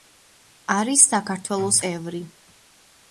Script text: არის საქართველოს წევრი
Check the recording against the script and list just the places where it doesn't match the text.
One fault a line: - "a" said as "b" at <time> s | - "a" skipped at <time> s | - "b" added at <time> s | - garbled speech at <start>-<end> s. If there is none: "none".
none